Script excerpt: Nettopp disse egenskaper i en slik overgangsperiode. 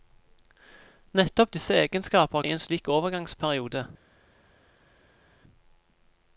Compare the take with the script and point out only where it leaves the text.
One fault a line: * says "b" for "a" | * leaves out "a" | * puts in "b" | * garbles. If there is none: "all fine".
all fine